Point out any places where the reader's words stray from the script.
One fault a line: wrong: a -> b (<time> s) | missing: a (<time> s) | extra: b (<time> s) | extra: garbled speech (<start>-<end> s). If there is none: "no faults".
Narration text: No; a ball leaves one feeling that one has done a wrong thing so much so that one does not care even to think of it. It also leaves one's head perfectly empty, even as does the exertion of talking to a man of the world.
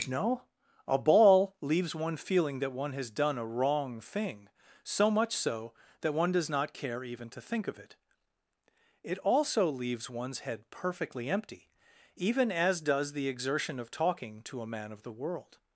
no faults